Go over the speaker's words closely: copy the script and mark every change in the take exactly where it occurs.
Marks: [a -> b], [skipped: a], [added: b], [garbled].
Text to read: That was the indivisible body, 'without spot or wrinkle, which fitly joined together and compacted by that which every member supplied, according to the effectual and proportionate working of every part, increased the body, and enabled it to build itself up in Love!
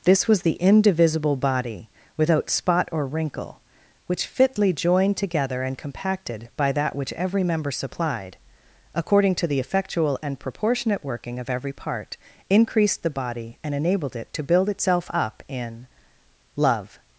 [That -> This] was the indivisible body, 'without spot or wrinkle, which fitly joined together and compacted by that which every member supplied, according to the effectual and proportionate working of every part, increased the body, and enabled it to build itself up in Love!